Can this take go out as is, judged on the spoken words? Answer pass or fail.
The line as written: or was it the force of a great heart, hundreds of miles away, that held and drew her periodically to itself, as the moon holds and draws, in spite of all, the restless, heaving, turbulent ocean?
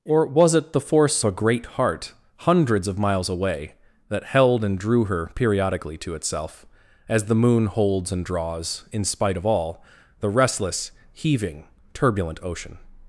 fail